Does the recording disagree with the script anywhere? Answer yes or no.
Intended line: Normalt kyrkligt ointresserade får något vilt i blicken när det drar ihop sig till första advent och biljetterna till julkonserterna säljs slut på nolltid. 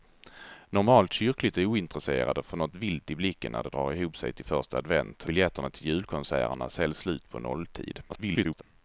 yes